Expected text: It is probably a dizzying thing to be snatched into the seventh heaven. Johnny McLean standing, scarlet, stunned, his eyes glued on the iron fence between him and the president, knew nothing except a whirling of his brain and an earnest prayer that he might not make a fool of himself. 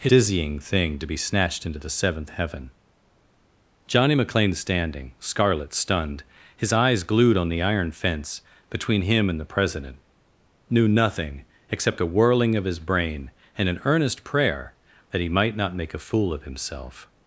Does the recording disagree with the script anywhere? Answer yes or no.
yes